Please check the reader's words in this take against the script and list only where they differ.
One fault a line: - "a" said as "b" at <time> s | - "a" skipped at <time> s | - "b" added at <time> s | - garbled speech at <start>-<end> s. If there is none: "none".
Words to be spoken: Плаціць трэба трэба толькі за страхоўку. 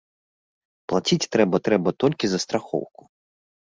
none